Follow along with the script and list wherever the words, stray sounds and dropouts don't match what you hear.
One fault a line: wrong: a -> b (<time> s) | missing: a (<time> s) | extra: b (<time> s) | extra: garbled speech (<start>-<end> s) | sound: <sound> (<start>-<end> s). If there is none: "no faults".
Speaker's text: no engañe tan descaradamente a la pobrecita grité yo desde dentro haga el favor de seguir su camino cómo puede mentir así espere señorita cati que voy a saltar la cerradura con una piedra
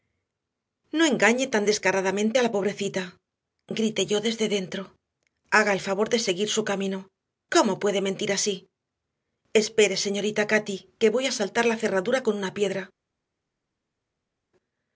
no faults